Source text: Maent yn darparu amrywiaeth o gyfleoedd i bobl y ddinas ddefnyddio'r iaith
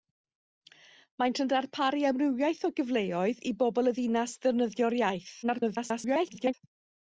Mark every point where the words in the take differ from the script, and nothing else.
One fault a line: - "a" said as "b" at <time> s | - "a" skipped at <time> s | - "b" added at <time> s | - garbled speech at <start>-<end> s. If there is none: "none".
- garbled speech at 5.4-6.5 s